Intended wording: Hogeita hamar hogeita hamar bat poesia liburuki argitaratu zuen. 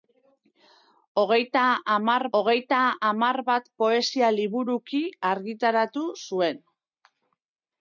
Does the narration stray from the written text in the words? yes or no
no